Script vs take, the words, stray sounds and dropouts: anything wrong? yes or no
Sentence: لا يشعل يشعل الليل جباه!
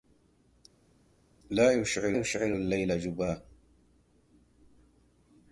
no